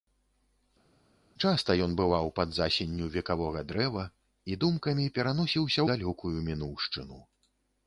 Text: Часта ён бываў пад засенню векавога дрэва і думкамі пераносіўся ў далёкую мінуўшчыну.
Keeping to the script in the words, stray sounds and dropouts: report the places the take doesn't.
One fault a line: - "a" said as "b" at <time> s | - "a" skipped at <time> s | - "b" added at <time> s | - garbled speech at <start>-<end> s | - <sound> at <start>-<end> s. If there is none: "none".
- "ў" skipped at 5.8 s